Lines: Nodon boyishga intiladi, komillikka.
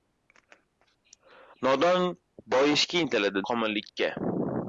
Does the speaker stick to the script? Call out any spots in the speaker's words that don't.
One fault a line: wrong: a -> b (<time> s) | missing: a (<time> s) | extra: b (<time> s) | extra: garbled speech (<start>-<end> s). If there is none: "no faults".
no faults